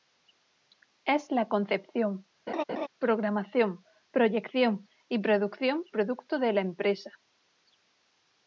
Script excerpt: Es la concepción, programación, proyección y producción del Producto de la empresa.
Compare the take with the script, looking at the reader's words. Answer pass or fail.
fail